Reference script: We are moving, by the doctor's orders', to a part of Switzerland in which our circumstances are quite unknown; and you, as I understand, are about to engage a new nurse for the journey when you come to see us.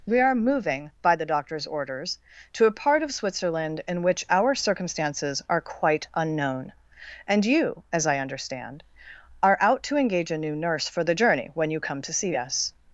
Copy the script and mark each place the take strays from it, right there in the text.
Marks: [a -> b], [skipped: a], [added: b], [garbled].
We are moving, by the doctor's orders', to a part of Switzerland in which our circumstances are quite unknown; and you, as I understand, are [about -> out] to engage a new nurse for the journey when you come to see us.